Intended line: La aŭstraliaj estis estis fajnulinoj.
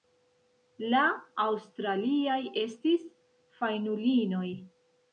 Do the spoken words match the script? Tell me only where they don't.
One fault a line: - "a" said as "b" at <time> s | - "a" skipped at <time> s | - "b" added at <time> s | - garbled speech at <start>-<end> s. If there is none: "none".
- "estis" skipped at 3.1 s